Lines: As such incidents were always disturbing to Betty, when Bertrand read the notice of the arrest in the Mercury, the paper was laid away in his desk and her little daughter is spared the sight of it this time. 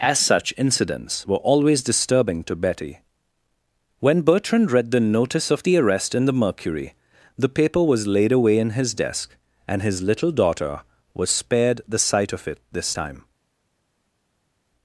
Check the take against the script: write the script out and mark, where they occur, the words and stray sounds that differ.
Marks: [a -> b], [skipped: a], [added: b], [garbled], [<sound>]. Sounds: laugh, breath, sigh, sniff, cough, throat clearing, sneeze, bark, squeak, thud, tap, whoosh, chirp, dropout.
As such incidents were always disturbing to Betty, when Bertrand read the notice of the arrest in the Mercury, the paper was laid away in his desk and [her -> his] little daughter [is -> was] spared the sight of it this time.